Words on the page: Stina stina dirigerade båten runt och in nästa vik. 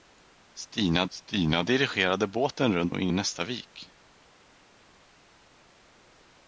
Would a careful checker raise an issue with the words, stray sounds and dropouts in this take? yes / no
no